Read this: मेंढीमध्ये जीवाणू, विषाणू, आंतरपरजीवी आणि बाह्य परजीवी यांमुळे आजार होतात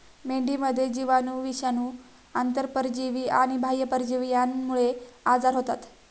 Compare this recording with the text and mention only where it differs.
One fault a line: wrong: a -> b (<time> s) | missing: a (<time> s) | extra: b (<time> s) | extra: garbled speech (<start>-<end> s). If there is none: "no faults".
no faults